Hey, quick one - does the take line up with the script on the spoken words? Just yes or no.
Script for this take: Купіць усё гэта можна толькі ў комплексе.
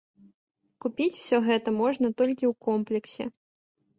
yes